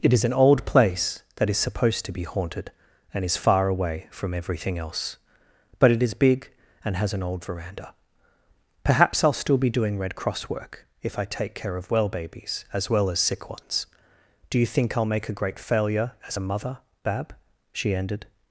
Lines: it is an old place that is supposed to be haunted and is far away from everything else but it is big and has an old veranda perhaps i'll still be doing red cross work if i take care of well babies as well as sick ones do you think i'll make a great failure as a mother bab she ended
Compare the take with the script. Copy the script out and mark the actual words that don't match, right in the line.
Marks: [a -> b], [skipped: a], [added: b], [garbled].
it is an old place that is supposed to be haunted and is far away from everything else but it is big and has an old veranda perhaps i'll still be doing red cross work if i take care of well babies as well as sick ones do you think i'll make a great failure as a mother bab she ended